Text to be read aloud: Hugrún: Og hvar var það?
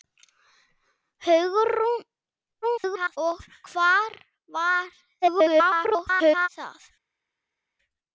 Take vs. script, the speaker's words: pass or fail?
fail